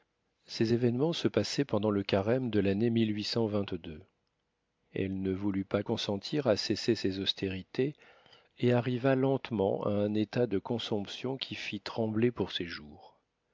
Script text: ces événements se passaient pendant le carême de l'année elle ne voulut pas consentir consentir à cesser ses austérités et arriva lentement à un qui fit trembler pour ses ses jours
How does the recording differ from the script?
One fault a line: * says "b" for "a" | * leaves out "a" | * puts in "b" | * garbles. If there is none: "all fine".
* leaves out "consentir"
* puts in "état de consomption"
* leaves out "ses"